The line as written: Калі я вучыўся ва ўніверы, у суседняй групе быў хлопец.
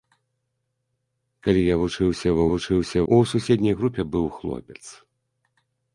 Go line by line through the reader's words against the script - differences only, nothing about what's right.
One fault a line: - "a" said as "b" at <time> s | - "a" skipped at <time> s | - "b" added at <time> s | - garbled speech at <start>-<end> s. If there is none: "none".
- "ўніверы" said as "вучыўся" at 2.5 s